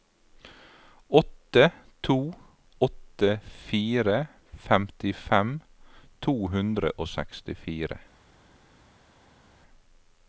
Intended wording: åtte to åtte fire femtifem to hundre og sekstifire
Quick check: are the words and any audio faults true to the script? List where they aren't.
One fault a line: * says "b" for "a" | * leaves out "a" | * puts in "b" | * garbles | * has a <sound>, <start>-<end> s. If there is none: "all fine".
all fine